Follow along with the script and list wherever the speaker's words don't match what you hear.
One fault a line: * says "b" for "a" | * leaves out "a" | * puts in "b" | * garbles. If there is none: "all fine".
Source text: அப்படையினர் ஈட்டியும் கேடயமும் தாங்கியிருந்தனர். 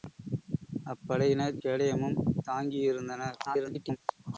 * leaves out "ஈட்டியும்"
* garbles